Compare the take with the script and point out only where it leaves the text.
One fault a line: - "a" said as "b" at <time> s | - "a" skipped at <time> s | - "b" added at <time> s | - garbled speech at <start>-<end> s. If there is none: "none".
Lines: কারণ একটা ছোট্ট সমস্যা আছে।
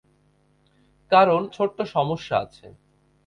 - "একটা" skipped at 1.4 s